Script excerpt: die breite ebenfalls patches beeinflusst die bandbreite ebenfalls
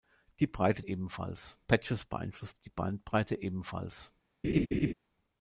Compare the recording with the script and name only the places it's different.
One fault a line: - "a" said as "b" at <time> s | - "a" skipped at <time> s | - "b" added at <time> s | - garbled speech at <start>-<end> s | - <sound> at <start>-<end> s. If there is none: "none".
- laugh at 4.4-4.9 s